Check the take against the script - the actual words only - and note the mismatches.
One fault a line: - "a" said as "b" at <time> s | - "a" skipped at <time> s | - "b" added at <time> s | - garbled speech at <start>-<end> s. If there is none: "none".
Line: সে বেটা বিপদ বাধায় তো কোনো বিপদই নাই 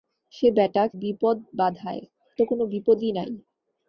none